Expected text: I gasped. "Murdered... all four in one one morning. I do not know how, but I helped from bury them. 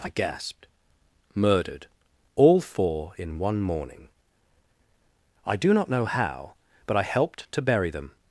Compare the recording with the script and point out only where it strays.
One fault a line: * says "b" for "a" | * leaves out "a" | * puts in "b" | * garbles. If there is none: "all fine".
* leaves out "one"
* says "to" for "from"